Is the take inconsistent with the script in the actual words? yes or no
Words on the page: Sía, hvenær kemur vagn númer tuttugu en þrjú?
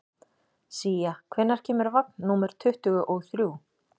yes